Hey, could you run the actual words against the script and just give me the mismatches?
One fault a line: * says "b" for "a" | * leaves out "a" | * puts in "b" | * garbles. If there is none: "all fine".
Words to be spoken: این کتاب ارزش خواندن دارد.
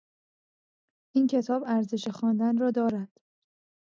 * puts in "را"